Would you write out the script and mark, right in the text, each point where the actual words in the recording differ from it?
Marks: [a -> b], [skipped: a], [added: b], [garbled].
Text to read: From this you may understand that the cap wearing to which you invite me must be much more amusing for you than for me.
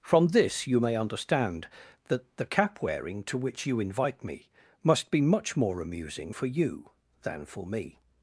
From this you may understand that the cap wearing to which you invite me must be much more amusing for you than for me.